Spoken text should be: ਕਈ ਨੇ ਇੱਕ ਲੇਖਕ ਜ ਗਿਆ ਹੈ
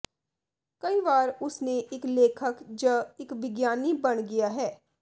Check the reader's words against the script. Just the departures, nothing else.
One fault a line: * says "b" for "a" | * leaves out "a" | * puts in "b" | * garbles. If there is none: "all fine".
* puts in "ਵਾਰ ਉਸ"
* puts in "ਇੱਕ ਵਿਗਿਆਨੀ ਬਣ"